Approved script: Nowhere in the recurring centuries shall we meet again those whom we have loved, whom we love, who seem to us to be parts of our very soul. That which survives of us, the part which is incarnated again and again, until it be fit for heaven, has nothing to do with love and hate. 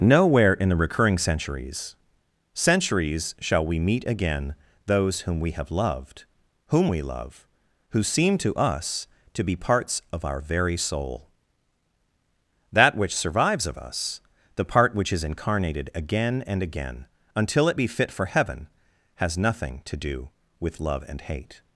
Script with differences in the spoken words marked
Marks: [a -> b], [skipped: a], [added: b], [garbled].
Nowhere in the recurring centuries [added: centuries] shall we meet again those whom we have loved, whom we love, who seem to us to be parts of our very soul. That which survives of us, the part which is incarnated again and again, until it be fit for heaven, has nothing to do with love and hate.